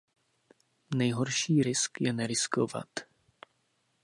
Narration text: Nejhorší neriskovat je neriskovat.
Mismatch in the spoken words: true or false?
true